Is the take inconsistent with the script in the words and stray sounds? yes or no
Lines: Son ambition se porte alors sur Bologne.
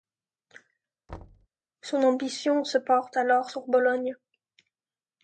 yes